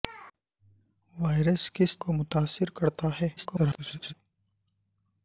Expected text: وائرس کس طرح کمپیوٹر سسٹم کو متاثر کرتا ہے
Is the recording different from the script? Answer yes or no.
yes